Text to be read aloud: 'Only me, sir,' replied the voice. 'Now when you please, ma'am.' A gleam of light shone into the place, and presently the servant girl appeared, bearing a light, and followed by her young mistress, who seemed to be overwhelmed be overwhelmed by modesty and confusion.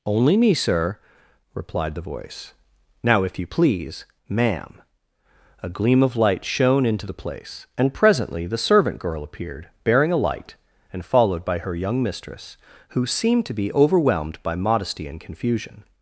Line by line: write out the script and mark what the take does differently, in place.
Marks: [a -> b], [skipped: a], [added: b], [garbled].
'Only me, sir,' replied the voice. 'Now [when -> if] you please, ma'am.' A gleam of light shone into the place, and presently the servant girl appeared, bearing a light, and followed by her young mistress, who seemed to be overwhelmed [skipped: be overwhelmed] by modesty and confusion.